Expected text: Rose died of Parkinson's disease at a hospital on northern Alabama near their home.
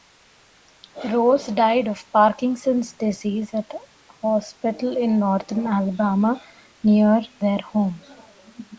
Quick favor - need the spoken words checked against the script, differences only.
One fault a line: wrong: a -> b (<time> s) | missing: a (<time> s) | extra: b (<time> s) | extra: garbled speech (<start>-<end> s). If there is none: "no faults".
wrong: on -> in (5.0 s)